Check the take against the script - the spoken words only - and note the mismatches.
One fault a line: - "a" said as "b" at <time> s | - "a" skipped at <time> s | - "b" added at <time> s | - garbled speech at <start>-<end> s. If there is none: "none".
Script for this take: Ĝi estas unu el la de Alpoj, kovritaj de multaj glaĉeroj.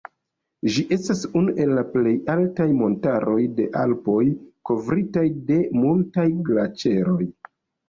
- "plej altaj montaroj" added at 1.9 s